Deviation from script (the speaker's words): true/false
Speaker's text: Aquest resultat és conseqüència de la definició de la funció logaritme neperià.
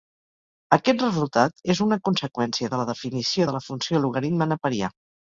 true